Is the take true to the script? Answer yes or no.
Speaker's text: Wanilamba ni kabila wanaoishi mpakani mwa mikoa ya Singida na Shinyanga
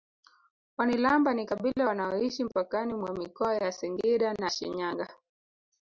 yes